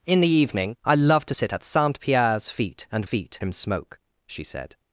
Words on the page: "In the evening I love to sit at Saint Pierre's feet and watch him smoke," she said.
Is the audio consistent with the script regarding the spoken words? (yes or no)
no